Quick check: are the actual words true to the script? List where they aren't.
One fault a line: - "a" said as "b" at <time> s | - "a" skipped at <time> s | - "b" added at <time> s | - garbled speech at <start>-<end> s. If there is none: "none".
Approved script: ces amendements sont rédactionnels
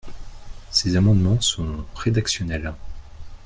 none